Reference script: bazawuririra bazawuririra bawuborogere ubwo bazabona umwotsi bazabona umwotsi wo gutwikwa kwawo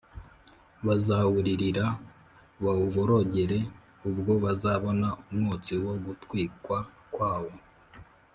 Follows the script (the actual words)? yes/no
no